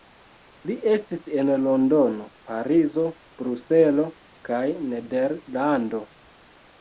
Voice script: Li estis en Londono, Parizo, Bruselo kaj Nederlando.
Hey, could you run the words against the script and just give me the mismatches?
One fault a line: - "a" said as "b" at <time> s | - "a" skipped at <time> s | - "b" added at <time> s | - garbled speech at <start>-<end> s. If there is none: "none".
none